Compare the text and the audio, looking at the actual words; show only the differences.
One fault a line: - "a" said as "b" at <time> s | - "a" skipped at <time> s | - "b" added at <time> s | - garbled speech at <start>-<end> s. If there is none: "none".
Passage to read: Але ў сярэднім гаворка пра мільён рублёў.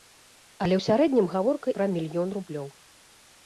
none